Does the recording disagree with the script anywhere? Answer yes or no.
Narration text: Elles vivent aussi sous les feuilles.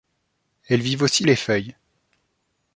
yes